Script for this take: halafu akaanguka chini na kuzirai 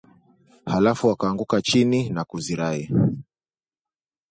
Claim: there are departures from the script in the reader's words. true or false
false